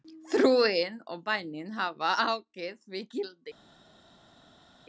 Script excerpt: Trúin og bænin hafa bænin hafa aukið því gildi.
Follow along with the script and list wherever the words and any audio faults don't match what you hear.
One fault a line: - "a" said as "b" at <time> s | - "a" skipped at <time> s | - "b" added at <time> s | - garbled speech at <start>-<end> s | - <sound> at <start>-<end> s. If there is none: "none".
- "bænin hafa" skipped at 2.1 s